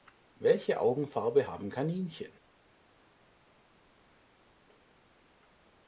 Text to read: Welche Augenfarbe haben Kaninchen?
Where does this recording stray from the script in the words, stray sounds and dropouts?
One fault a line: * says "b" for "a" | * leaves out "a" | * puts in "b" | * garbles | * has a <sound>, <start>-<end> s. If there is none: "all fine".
all fine